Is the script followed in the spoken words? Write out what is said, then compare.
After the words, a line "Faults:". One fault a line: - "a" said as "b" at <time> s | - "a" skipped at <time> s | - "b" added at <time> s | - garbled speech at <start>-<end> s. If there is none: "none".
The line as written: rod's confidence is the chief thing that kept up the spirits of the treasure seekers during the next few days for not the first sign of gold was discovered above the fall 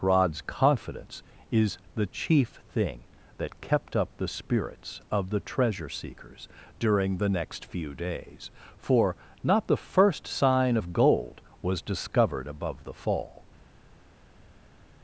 rod's confidence is the chief thing that kept up the spirits of the treasure seekers during the next few days for not the first sign of gold was discovered above the fall
Faults:
none